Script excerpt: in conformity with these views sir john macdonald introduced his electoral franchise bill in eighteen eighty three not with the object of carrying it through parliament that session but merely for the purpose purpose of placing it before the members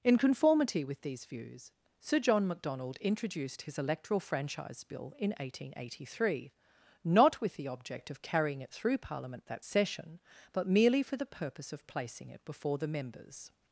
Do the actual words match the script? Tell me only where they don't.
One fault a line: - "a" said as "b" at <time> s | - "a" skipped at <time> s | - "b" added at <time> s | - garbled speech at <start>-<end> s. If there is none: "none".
- "purpose" skipped at 11.7 s